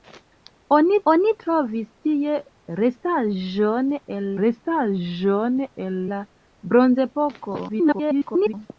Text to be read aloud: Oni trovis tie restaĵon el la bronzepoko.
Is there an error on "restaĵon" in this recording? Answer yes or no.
no